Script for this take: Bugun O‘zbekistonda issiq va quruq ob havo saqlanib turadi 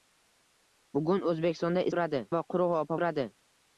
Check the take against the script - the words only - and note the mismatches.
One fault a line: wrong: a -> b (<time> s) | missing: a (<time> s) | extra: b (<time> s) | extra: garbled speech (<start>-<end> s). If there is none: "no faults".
wrong: issiq -> turadi (1.9 s)
missing: havo saqlanib (3.0 s)